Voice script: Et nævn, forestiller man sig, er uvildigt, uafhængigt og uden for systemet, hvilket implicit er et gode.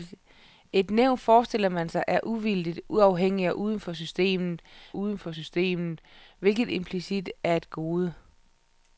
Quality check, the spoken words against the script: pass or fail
fail